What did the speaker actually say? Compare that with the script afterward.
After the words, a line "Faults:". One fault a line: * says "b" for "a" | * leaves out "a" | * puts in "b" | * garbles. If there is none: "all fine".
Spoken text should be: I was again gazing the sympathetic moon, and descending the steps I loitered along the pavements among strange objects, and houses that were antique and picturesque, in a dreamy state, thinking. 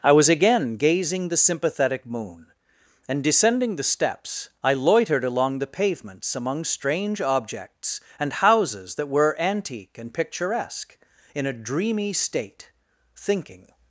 I was again gazing the sympathetic moon, and descending the steps I loitered along the pavements among strange objects, and houses that were antique and picturesque, in a dreamy state, thinking.
Faults:
all fine